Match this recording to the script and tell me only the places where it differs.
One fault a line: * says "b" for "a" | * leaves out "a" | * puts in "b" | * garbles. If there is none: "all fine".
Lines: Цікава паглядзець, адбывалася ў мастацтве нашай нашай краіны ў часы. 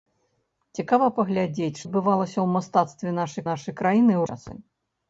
all fine